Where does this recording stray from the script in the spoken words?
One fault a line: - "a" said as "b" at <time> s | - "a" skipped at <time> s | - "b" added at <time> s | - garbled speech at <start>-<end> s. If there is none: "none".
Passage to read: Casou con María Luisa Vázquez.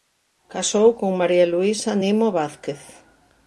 - "Nimo" added at 2.0 s